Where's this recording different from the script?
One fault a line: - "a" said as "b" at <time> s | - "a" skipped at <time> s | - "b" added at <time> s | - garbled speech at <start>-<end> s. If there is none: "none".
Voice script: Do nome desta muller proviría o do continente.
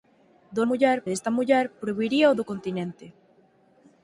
- "nome" said as "muller" at 0.7 s